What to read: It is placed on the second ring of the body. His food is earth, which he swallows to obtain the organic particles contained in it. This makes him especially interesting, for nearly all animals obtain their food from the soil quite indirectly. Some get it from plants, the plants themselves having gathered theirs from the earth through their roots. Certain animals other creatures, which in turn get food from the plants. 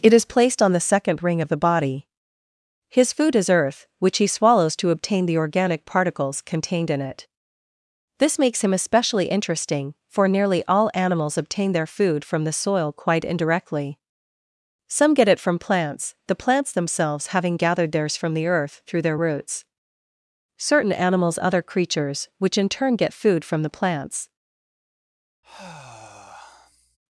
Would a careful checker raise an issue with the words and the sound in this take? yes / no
yes